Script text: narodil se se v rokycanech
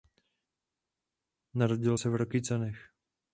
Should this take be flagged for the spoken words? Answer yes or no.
yes